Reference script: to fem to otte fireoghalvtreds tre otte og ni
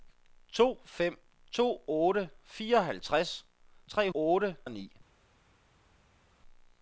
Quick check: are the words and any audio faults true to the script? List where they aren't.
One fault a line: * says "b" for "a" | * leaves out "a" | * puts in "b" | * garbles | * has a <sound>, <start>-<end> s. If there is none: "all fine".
all fine